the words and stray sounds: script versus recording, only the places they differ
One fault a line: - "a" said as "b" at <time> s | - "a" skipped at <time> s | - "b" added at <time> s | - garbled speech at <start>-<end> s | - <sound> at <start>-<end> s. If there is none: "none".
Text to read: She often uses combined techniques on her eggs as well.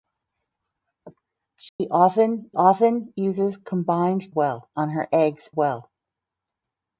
- dropout at 1.7-1.8 s
- "often" added at 2.6 s
- "techniques" said as "well" at 4.3 s
- "as" skipped at 5.5 s